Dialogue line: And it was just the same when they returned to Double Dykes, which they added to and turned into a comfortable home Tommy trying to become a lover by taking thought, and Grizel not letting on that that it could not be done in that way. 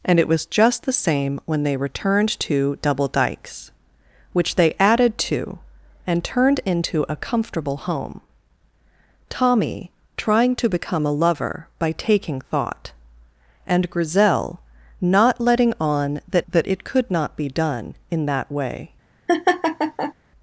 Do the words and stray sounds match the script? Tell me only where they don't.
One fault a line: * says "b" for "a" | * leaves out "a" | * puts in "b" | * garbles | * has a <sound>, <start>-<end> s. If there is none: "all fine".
* has a laugh, 19.3-20.1 s